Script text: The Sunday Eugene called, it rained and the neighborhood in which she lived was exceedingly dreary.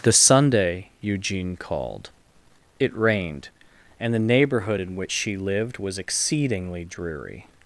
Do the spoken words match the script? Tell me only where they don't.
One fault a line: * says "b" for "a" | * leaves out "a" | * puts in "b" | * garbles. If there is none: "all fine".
all fine